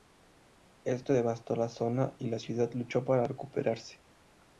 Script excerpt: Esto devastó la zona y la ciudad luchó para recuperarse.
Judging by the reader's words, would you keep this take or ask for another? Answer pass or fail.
pass